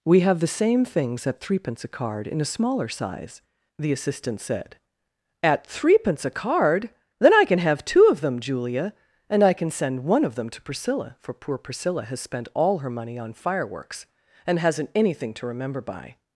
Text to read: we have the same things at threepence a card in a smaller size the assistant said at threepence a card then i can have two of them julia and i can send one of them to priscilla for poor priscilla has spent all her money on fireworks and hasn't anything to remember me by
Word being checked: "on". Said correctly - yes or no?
yes